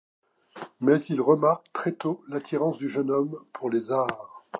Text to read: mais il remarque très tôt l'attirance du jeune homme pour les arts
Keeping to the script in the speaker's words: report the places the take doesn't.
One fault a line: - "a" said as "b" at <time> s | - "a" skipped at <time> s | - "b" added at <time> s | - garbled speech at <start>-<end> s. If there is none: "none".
none